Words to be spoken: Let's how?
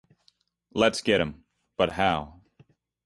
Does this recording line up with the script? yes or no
no